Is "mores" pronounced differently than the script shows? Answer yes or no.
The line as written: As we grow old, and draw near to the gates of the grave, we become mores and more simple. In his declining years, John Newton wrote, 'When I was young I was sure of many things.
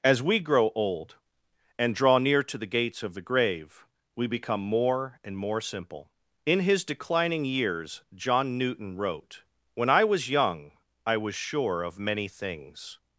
yes